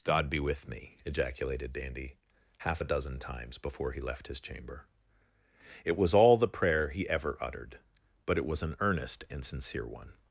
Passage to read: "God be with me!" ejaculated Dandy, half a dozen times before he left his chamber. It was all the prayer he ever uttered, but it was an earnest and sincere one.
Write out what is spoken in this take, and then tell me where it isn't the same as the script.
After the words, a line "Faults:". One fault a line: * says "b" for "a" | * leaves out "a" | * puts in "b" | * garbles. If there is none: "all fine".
"God be with me!" ejaculated Dandy, half a dozen times before he left his chamber. It was all the prayer he ever uttered, but it was an earnest and sincere one.
Faults:
all fine